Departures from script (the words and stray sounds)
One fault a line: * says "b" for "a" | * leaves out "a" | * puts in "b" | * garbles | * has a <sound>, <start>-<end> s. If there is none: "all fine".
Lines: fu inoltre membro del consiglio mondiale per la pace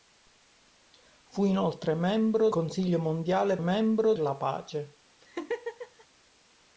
* leaves out "del"
* says "membro" for "per"
* has a laugh, 5.2-6.1 s